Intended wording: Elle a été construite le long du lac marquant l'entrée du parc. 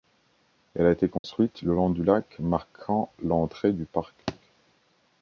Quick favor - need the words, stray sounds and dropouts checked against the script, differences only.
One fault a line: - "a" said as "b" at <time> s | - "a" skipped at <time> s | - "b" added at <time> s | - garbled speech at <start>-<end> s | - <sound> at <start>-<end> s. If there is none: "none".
- dropout at 1.2-1.2 s
- thud at 4.3-4.4 s